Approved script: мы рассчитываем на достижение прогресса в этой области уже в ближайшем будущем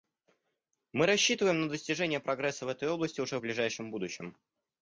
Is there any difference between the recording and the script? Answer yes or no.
no